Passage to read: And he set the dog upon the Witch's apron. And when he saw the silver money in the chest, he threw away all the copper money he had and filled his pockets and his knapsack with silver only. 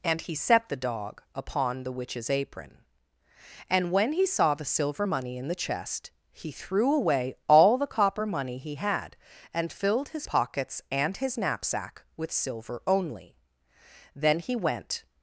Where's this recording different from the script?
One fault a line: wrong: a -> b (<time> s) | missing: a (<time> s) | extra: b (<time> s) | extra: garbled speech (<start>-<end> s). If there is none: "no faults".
extra: Then he went (14.2 s)